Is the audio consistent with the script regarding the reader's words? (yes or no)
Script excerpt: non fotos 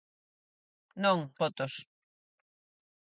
yes